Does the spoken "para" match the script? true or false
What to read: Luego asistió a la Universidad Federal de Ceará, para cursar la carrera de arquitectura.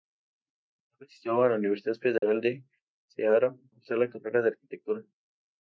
false